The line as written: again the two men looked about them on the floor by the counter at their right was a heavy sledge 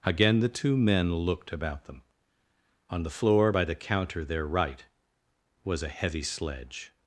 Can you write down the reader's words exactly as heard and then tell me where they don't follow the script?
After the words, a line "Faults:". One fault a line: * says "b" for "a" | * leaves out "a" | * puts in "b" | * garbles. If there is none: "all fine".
again the two men looked about them on the floor by the counter their right was a heavy sledge
Faults:
* leaves out "at"